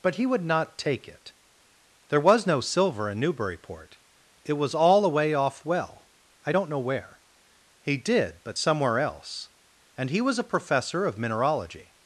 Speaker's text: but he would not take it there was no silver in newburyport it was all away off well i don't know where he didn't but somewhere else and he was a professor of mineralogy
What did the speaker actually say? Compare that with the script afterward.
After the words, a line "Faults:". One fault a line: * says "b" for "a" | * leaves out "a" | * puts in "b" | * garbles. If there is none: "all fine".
but he would not take it there was no silver in newburyport it was all away off well i don't know where he did but somewhere else and he was a professor of mineralogy
Faults:
* says "did" for "didn't"